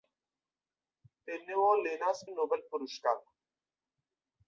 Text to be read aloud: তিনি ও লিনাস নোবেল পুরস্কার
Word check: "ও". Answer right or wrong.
right